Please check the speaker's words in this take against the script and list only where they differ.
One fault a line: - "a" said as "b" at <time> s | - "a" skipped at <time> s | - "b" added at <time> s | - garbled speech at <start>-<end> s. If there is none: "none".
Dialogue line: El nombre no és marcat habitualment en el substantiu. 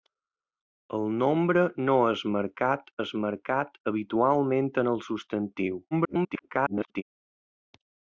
- "és marcat" added at 3.0 s
- garbled speech at 5.9-7.0 s